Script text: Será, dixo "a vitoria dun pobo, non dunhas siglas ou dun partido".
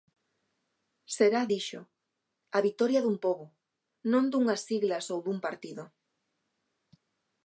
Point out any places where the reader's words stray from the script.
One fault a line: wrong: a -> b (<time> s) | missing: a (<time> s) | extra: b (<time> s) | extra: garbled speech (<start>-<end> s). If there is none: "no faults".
no faults